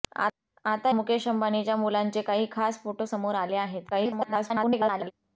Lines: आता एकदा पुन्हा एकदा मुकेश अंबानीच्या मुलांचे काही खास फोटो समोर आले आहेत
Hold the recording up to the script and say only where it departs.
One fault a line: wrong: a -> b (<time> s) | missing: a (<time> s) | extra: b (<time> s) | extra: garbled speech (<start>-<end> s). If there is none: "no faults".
missing: एकदा पुन्हा एकदा (0.9 s)
extra: garbled speech (3.9-5.1 s)